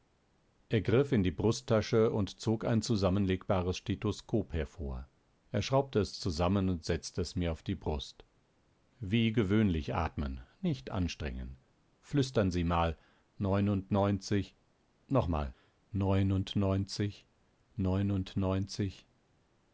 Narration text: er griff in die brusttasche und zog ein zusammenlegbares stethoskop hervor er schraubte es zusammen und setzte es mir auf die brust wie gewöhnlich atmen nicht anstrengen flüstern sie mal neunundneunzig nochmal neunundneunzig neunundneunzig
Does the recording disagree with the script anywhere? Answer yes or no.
no